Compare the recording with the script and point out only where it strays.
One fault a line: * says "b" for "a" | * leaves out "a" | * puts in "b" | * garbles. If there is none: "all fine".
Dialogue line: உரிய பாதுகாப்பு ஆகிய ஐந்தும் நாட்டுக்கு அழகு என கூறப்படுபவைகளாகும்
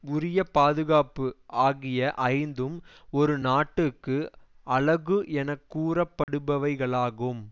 * puts in "ஒரு"